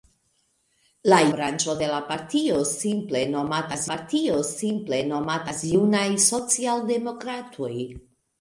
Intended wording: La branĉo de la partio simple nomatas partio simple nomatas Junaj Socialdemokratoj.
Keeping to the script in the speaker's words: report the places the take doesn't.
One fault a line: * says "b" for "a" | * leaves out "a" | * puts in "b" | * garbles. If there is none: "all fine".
all fine